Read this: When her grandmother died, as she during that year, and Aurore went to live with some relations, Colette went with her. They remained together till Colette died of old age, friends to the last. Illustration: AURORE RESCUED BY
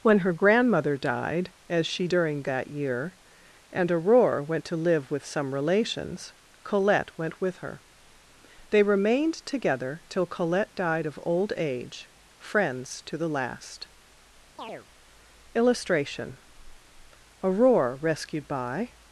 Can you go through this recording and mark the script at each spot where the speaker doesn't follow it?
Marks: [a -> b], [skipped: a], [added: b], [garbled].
When her grandmother died, as she during that year, and Aurore went to live with some relations, Colette went with her. They remained together till Colette died of old age, friends to the last. Illustration: AURORE RESCUED BY